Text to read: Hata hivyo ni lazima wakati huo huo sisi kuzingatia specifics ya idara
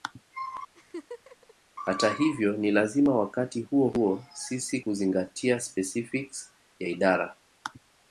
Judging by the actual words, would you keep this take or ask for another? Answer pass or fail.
pass